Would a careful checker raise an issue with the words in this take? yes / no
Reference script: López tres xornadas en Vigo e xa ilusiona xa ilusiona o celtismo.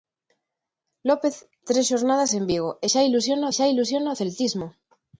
no